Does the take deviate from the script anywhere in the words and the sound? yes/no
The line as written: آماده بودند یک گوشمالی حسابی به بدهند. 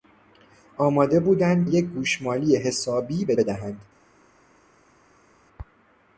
no